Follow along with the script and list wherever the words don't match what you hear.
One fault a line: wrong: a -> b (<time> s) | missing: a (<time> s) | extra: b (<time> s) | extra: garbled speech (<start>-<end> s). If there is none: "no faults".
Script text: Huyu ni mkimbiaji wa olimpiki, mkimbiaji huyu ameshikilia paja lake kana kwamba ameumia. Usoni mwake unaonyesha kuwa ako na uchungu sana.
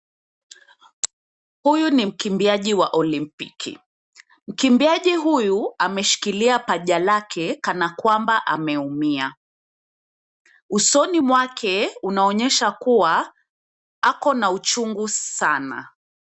no faults